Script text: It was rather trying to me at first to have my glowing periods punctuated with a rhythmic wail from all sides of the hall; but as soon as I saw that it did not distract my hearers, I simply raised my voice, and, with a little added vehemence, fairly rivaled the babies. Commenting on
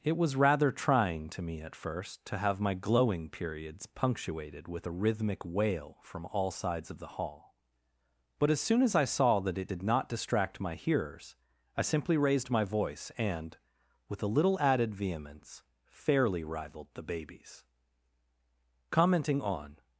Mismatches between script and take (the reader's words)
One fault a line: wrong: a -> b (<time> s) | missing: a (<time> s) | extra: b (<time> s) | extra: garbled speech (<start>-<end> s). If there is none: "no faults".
no faults